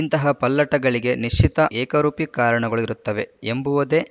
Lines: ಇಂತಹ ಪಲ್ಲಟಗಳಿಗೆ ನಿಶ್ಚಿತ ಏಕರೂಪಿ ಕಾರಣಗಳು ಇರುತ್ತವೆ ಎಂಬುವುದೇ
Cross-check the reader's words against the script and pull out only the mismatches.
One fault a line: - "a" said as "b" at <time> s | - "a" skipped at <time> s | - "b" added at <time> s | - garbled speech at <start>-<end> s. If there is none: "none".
none